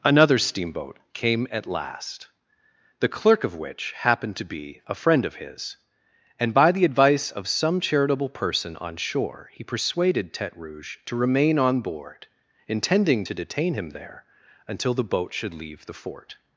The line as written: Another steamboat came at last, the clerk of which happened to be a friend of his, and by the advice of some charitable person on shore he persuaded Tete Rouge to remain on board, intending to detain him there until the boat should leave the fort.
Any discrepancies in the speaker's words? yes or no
no